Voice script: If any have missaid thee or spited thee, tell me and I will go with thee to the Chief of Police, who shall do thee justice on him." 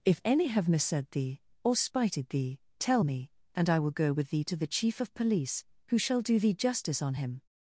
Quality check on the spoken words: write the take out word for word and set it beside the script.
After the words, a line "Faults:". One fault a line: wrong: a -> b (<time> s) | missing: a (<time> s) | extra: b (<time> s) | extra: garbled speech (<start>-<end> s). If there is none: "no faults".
If any have missaid thee or spited thee, tell me and I will go with thee to the Chief of Police, who shall do thee justice on him."
Faults:
no faults